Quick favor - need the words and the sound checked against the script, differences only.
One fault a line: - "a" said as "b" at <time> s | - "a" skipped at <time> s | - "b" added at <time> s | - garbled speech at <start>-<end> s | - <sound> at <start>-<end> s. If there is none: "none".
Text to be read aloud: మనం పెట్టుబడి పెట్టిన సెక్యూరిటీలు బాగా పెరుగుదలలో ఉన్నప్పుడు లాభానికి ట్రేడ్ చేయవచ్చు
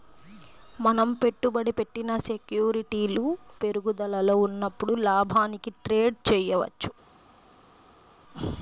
- "బాగా" skipped at 3.2 s